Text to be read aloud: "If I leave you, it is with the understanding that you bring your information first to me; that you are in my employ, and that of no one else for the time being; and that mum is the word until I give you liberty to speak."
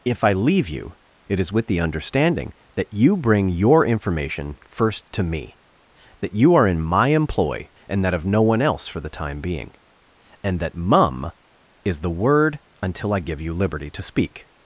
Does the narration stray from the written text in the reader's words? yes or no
no